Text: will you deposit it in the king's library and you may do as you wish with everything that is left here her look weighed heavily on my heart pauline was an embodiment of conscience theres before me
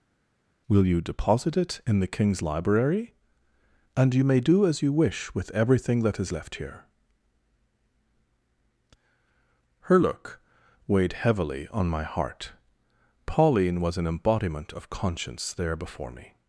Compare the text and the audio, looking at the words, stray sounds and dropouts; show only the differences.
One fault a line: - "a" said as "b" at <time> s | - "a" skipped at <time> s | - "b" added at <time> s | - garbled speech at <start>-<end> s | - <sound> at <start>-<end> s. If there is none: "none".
- "theres" said as "there" at 15.5 s